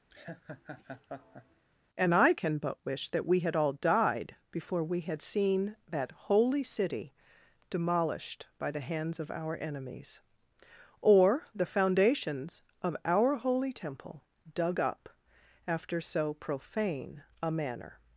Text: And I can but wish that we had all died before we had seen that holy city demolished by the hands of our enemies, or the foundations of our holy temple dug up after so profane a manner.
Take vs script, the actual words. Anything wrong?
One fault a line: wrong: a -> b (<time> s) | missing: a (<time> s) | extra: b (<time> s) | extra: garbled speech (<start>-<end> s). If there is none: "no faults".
no faults